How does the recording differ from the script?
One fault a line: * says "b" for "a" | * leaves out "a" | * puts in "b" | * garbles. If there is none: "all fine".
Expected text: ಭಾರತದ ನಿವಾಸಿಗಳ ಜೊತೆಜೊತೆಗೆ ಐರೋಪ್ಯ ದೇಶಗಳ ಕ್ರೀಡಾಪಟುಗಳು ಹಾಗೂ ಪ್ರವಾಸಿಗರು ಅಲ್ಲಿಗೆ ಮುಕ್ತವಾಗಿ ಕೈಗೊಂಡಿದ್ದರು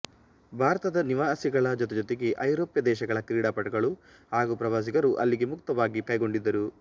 all fine